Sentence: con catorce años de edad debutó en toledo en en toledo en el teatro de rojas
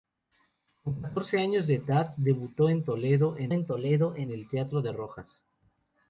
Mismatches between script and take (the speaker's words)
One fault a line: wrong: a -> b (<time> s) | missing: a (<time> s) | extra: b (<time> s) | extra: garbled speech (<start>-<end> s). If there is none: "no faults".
no faults